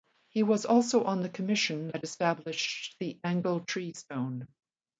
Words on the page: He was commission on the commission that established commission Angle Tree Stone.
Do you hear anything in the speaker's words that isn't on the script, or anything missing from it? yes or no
yes